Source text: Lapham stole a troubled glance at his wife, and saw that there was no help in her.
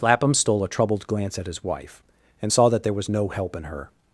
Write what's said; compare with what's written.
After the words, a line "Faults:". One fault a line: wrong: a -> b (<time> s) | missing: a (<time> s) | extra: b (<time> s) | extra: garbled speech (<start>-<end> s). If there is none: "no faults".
Lapham stole a troubled glance at his wife, and saw that there was no help in her.
Faults:
no faults